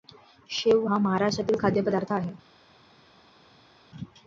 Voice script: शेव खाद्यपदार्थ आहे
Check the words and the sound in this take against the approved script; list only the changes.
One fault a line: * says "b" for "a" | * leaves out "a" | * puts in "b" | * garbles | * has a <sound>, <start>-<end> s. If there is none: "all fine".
* puts in "हा महाराष्ट्रातील"